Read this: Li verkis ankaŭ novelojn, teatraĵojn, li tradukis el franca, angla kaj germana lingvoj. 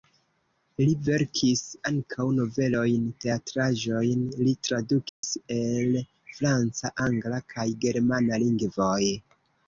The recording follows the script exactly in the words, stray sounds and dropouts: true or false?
false